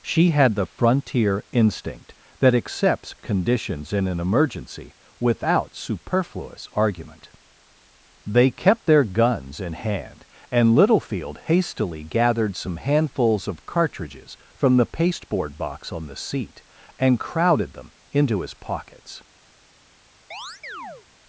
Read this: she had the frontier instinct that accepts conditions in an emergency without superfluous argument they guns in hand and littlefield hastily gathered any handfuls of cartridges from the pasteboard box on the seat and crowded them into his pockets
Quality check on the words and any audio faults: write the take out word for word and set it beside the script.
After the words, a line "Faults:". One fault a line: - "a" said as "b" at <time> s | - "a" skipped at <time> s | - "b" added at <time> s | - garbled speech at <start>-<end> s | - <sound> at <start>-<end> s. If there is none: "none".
she had the frontier instinct that accepts conditions in an emergency without superfluous argument they kept their guns in hand and littlefield hastily gathered some handfuls of cartridges from the pasteboard box on the seat and crowded them into his pockets
Faults:
- "kept their" added at 8.5 s
- "any" said as "some" at 12.6 s
- chirp at 20.3-21.1 s